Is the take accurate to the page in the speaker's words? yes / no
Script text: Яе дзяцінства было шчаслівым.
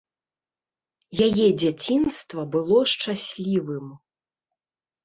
yes